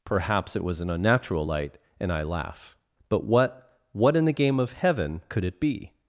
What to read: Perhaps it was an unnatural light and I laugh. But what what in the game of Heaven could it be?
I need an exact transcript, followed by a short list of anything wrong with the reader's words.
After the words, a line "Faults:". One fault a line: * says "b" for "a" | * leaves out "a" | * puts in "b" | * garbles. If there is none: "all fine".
Perhaps it was an unnatural light and I laugh. But what what in the game of Heaven could it be?
Faults:
all fine